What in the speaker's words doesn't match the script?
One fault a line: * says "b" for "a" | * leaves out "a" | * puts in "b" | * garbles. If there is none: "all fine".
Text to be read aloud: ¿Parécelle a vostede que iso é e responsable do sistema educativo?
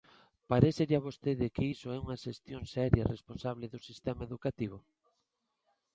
* puts in "unha xestión seria"